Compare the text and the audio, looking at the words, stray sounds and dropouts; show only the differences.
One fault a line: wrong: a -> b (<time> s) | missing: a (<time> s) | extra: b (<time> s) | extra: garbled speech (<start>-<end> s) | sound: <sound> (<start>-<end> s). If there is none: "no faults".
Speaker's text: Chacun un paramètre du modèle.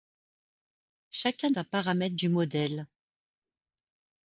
no faults